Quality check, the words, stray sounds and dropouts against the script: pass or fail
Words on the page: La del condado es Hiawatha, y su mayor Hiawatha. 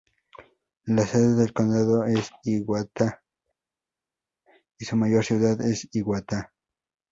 fail